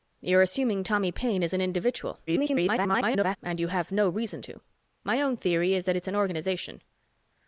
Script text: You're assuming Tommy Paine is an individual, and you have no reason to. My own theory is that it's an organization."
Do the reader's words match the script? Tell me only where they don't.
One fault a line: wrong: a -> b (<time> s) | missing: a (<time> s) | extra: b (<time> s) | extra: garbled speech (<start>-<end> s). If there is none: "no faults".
extra: garbled speech (2.3-3.4 s)